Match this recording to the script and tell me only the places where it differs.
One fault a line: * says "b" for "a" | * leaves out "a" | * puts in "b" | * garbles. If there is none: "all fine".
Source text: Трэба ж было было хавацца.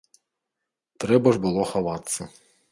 * leaves out "было"